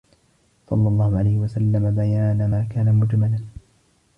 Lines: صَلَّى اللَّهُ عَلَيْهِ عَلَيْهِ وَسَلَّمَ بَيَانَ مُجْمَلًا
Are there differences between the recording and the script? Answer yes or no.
yes